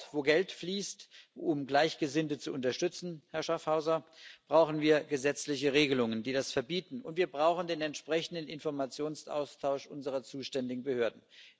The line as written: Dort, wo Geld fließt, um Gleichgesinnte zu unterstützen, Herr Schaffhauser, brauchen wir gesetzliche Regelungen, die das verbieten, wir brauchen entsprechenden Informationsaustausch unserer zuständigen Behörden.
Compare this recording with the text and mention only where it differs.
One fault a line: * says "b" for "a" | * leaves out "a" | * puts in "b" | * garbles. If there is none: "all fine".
* puts in "und"
* puts in "den"